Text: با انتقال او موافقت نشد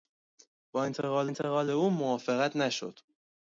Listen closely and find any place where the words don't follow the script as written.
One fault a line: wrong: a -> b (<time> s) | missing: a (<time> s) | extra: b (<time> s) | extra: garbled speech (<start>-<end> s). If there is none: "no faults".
extra: انتقال (1.2 s)